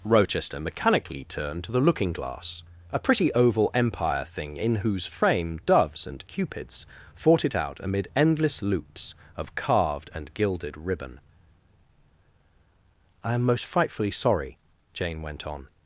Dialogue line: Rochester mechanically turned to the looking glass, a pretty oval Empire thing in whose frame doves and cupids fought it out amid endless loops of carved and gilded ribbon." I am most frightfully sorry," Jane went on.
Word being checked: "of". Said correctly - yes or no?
yes